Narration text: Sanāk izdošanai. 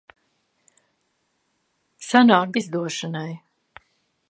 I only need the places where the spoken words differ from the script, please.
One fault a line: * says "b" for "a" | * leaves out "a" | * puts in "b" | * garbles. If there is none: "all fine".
all fine